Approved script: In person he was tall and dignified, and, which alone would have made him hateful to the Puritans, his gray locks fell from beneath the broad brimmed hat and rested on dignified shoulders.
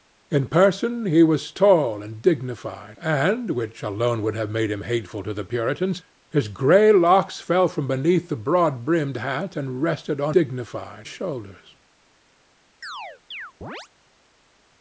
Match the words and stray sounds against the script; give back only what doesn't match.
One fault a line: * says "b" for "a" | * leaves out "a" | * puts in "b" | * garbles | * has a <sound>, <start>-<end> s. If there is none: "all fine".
* has a chirp, 12.8-13.9 s